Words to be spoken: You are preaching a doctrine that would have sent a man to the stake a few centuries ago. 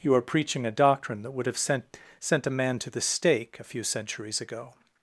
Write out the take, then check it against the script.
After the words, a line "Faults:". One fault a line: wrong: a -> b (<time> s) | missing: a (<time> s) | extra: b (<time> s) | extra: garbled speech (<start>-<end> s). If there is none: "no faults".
You are preaching a doctrine that would have sent sent a man to the stake a few centuries ago.
Faults:
extra: sent (2.2 s)